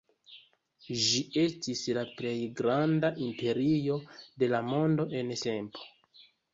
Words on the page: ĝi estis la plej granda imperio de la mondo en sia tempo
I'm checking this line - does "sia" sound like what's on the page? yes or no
no